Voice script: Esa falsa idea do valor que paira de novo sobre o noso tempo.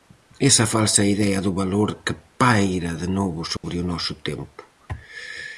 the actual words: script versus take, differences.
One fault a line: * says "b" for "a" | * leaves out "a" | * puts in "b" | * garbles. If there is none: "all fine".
all fine